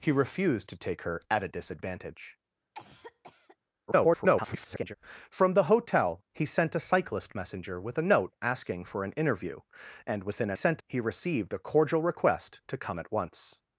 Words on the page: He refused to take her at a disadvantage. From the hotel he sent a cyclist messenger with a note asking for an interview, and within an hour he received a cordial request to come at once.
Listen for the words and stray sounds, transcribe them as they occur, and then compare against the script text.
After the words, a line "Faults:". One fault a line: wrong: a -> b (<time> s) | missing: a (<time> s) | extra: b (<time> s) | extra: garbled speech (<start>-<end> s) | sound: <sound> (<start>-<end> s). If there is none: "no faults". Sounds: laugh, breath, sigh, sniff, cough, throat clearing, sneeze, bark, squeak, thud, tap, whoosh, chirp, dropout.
He refused to take her at a disadvantage. [garbled] From the hotel he sent a cyclist messenger with a note asking for an interview, and within an sent he received a cordial request to come at once.
Faults:
sound: cough (2.7-3.6 s)
extra: garbled speech (3.9-4.9 s)
wrong: hour -> sent (10.5 s)